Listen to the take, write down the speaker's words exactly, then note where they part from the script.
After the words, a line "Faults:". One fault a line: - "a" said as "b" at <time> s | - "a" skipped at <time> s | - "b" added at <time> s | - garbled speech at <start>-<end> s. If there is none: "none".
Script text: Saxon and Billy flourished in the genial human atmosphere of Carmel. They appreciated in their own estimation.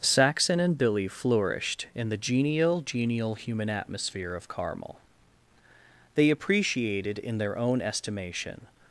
Saxon and Billy flourished in the genial genial human atmosphere of Carmel. They appreciated in their own estimation.
Faults:
- "genial" added at 2.8 s